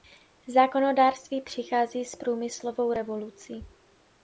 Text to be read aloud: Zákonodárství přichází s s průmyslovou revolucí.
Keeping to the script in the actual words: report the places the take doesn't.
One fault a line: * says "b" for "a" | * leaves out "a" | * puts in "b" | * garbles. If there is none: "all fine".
* leaves out "s"